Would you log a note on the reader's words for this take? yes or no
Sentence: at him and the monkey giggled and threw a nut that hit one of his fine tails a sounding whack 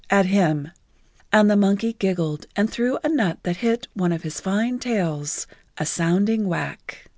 no